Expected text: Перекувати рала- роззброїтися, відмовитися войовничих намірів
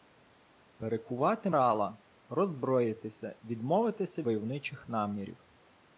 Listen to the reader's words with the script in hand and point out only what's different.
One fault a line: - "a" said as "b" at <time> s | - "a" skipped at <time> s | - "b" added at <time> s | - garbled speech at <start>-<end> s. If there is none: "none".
none